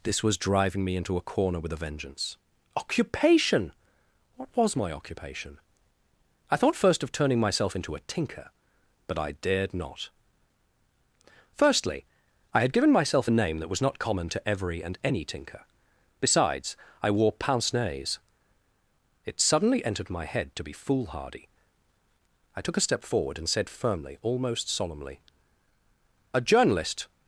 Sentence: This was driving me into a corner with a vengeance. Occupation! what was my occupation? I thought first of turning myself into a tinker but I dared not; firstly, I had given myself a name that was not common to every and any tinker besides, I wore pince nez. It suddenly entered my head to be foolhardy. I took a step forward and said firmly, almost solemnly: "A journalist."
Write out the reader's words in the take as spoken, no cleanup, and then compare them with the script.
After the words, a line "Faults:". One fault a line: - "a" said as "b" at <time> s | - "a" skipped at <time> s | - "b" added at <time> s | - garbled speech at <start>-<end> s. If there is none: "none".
This was driving me into a corner with a vengeance. Occupation! what was my occupation? I thought first of turning myself into a tinker but I dared not; firstly, I had given myself a name that was not common to every and any tinker besides, I wore pince nez. It suddenly entered my head to be foolhardy. I took a step forward and said firmly, almost solemnly: "A journalist."
Faults:
none